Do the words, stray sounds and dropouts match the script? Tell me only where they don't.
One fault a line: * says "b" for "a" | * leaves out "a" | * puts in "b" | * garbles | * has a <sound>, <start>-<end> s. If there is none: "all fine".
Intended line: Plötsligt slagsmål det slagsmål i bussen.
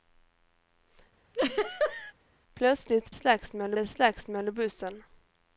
* has a laugh, 1.3-2.1 s